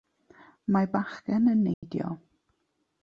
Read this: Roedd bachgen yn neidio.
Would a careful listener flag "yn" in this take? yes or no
no